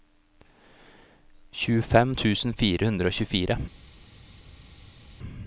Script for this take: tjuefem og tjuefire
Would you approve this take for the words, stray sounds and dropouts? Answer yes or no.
no